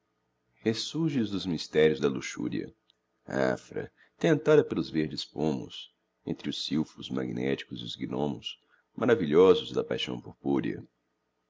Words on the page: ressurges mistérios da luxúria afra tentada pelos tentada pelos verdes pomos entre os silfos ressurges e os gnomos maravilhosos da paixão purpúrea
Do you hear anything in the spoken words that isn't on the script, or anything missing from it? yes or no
yes